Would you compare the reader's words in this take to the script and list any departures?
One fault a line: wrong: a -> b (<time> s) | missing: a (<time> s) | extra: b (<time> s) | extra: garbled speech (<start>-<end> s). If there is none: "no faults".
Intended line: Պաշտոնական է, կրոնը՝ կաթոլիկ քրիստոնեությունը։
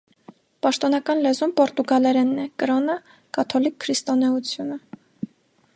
extra: լեզուն պորտուգալերենն (1.2 s)